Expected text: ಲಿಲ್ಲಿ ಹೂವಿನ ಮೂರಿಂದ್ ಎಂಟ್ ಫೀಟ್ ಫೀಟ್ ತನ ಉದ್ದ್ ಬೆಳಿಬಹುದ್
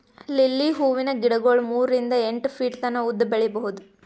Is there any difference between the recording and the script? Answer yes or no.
yes